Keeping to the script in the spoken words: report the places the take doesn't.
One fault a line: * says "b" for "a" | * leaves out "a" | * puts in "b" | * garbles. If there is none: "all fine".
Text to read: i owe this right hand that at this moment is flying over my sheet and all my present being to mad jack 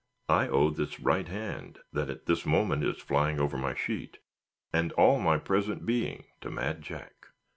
all fine